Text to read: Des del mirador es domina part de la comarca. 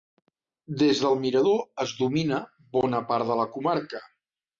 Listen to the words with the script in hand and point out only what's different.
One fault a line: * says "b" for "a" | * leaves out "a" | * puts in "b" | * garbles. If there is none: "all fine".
* puts in "bona"